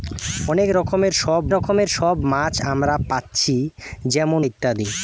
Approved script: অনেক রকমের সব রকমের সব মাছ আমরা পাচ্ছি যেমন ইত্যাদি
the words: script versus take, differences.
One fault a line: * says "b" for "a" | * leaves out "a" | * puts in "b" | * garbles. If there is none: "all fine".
all fine